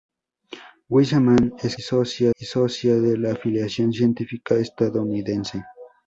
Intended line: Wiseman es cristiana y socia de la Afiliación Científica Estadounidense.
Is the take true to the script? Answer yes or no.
no